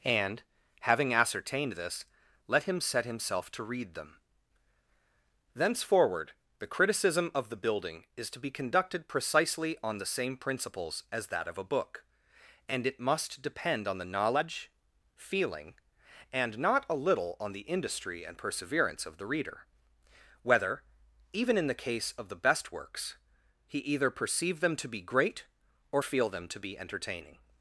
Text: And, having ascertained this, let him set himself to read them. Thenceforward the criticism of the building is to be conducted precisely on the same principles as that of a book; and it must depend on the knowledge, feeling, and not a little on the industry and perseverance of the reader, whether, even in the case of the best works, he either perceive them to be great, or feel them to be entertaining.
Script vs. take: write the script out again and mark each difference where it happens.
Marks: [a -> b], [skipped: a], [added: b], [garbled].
And, having ascertained this, let him set himself to read them. Thenceforward the criticism of the building is to be conducted precisely on the same principles as that of a book; and it must depend on the knowledge, feeling, and not a little on the industry and perseverance of the reader, whether, even in the case of the best works, he either perceive them to be great, or feel them to be entertaining.